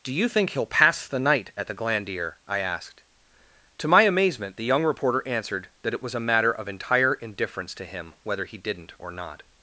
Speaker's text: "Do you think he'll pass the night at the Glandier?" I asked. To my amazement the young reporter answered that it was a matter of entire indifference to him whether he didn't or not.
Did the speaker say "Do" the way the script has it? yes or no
yes